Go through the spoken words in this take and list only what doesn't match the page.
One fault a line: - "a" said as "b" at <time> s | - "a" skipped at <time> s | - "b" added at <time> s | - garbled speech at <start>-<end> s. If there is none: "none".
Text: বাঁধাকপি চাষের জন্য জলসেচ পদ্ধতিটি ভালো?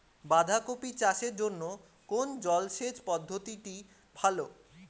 - "কোন" added at 2.1 s